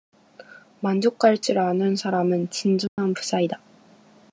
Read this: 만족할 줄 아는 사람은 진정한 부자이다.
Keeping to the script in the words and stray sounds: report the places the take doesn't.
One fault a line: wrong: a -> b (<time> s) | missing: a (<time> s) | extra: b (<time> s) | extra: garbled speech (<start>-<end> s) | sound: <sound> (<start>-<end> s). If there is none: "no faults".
sound: dropout (2.9-3.0 s)